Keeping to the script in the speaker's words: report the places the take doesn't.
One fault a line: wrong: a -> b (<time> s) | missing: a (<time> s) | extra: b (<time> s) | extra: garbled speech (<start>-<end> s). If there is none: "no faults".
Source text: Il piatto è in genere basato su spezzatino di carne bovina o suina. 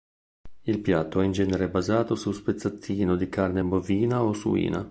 no faults